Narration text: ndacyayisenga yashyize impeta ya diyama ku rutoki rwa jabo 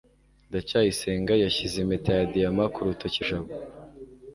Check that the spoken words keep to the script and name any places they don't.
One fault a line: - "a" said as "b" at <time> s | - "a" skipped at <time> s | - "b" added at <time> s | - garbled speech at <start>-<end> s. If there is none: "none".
- "rwa" skipped at 3.2 s